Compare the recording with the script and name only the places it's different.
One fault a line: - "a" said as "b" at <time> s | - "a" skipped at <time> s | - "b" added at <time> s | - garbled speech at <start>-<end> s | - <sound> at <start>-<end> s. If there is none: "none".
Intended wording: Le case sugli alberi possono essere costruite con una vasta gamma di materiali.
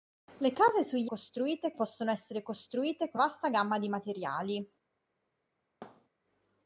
- "alberi" said as "costruite" at 1.0 s
- "una" skipped at 3.2 s
- thud at 5.8-6.1 s